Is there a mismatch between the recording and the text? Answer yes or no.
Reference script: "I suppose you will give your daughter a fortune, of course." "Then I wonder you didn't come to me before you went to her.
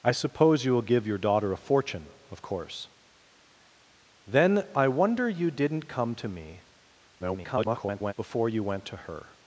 yes